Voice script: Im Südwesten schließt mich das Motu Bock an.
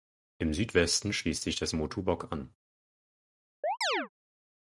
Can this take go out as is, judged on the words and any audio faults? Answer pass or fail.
fail